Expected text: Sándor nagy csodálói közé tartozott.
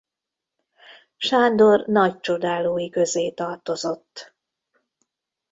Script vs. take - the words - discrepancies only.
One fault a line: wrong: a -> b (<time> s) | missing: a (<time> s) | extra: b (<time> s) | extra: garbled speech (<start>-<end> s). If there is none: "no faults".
no faults